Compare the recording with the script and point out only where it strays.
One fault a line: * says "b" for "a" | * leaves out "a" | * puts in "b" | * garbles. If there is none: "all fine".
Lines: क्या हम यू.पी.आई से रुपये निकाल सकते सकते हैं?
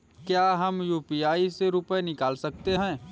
* leaves out "सकते"